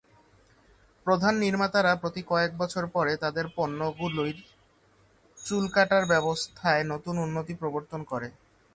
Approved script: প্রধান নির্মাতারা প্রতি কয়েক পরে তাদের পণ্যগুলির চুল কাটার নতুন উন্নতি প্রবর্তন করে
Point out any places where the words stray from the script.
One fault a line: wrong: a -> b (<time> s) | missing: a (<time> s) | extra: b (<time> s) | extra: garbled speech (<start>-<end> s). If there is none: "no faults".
extra: বছর (2.6 s)
extra: ব্যবস্থায় (6.0 s)